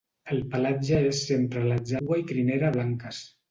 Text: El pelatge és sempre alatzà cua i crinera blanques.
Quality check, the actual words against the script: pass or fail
pass